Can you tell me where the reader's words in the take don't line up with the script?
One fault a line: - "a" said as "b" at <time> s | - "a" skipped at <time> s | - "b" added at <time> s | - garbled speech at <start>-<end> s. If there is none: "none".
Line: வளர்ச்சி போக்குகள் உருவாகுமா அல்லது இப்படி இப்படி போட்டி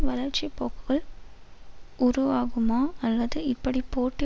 - "இப்படி" skipped at 3.8 s